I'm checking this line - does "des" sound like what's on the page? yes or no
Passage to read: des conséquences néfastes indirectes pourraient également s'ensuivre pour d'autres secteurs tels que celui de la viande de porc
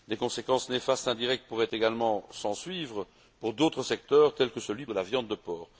yes